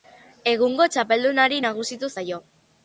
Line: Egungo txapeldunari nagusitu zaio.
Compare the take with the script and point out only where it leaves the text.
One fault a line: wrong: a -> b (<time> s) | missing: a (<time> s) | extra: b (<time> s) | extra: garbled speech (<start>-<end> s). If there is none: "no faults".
no faults